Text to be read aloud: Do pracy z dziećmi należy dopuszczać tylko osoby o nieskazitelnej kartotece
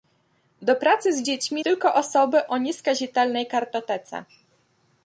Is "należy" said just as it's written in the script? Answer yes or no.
no